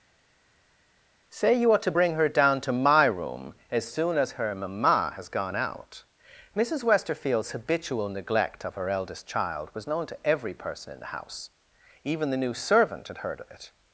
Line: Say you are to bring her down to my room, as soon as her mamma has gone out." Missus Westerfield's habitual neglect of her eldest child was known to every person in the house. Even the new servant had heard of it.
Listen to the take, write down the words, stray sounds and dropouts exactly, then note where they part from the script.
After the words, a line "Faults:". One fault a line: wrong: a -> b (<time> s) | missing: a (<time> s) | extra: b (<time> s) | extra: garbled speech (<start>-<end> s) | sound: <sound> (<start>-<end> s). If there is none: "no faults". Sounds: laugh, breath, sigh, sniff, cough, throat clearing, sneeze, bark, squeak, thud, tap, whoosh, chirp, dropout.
Say you are to bring her down to my room, as soon as her mamma has gone out." Missus Westerfield's habitual neglect of her eldest child was known to every person in the house. Even the new servant had heard of it.
Faults:
no faults